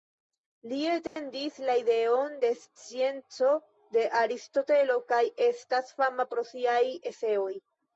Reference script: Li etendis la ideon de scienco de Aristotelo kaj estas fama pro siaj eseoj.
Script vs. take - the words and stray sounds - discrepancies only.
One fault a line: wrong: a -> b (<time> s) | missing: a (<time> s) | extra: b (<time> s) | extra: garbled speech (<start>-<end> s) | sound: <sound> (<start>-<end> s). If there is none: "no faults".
sound: dropout (1.1-1.2 s)